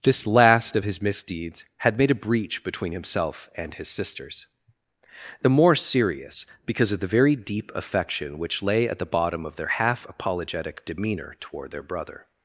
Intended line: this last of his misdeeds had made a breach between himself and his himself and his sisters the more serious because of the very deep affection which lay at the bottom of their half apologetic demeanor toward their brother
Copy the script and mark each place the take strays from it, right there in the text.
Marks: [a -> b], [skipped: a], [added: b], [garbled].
this last of his misdeeds had made a breach between himself and his [skipped: himself and his] sisters the more serious because of the very deep affection which lay at the bottom of their half apologetic demeanor toward their brother